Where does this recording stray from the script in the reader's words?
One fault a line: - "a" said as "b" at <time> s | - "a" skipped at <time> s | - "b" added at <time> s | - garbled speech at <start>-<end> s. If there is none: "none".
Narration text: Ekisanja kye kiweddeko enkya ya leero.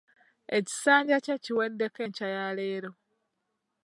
none